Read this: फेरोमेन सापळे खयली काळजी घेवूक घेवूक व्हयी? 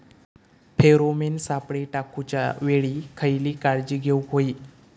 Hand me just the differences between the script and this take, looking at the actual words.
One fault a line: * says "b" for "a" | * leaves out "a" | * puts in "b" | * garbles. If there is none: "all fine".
* puts in "टाकूच्या वेळी"
* leaves out "घेवूक"